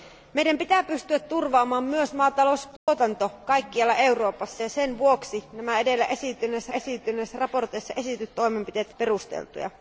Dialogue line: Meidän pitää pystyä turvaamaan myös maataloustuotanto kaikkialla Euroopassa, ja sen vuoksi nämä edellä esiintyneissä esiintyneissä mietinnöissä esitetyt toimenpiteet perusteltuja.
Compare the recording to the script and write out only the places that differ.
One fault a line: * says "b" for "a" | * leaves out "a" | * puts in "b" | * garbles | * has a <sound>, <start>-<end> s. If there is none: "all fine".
* has a dropout, 2.8-2.9 s